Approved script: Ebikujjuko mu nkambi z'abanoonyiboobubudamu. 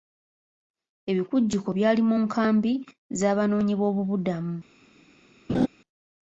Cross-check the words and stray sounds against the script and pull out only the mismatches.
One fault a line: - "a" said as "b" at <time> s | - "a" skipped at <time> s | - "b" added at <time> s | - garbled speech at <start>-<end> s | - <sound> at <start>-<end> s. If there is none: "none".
- "byali" added at 1.8 s
- laugh at 5.5-5.7 s